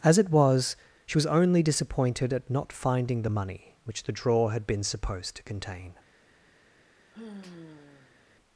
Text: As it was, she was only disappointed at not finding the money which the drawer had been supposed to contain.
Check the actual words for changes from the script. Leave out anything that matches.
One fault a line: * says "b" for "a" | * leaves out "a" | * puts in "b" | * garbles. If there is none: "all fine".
all fine